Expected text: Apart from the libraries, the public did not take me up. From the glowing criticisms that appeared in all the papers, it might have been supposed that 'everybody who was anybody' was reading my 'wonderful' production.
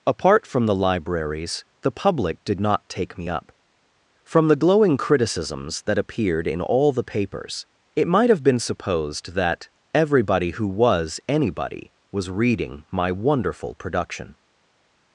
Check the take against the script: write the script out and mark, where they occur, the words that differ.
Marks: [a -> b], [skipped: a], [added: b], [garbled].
Apart from the libraries, the public did not take me up. From the glowing criticisms that appeared in all the papers, it might have been supposed that 'everybody who was anybody' was reading my 'wonderful' production.